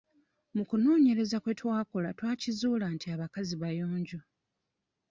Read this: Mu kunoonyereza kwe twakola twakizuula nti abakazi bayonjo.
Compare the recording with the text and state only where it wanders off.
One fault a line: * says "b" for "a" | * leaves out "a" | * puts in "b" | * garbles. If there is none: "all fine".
all fine